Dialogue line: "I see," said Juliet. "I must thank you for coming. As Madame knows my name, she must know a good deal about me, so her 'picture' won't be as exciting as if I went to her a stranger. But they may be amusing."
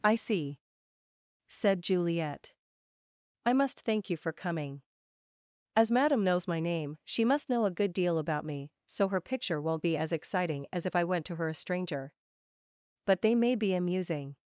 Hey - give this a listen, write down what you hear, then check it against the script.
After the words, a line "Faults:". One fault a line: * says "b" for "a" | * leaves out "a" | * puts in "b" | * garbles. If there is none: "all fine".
"I see," said Juliet. "I must thank you for coming. As Madame knows my name, she must know a good deal about me, so her 'picture' won't be as exciting as if I went to her a stranger. But they may be amusing."
Faults:
all fine